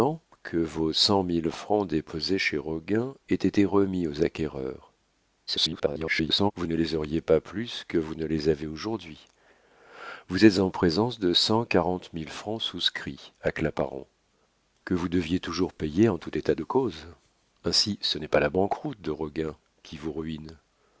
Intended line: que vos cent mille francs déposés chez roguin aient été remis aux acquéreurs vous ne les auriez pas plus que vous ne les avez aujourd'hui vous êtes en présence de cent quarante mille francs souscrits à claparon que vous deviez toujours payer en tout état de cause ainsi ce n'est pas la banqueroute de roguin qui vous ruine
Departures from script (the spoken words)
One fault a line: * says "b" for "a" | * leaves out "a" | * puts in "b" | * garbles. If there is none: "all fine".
* garbles